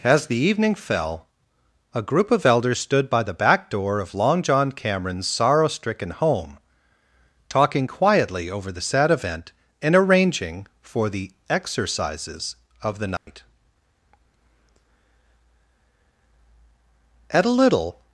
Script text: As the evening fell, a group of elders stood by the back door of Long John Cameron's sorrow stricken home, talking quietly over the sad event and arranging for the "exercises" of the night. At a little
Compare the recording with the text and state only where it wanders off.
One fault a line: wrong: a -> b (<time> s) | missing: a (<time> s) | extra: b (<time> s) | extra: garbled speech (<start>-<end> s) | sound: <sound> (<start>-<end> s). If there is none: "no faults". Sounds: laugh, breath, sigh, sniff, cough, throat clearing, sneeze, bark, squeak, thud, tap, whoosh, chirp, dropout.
sound: dropout (13.2-13.3 s)